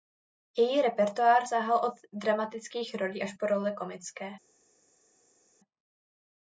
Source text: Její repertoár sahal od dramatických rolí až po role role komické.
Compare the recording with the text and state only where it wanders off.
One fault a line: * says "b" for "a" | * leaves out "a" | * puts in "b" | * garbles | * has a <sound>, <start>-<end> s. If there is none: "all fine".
* leaves out "role"